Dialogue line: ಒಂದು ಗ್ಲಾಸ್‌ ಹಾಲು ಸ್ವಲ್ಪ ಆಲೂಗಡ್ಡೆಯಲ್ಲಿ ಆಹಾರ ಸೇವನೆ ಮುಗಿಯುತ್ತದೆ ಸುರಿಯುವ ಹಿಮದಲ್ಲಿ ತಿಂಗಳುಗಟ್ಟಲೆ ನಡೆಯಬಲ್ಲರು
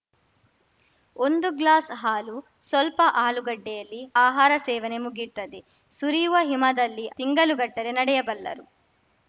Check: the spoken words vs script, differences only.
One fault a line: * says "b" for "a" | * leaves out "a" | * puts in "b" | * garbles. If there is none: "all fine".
all fine